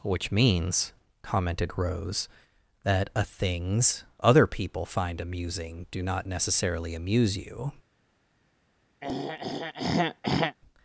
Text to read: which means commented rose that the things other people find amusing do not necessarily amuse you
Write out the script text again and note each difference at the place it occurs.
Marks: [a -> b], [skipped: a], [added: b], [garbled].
which means commented rose that [the -> a] things other people find amusing do not necessarily amuse you